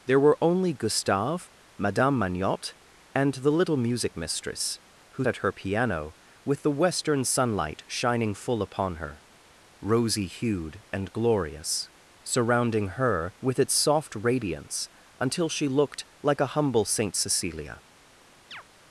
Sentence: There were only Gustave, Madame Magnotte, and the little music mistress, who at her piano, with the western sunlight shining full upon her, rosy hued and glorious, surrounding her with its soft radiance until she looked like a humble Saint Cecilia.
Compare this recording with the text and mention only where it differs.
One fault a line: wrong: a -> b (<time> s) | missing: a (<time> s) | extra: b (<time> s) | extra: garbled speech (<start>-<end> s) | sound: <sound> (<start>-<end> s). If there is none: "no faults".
sound: chirp (18.5-18.6 s)